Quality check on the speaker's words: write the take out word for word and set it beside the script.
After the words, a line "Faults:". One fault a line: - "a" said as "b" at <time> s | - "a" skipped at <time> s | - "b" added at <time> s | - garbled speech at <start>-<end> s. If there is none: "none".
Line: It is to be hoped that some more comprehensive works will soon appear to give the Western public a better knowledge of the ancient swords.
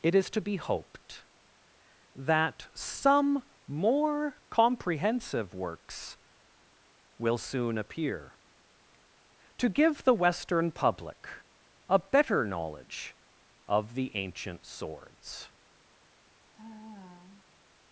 It is to be hoped that some more comprehensive works will soon appear to give the Western public a better knowledge of the ancient swords.
Faults:
none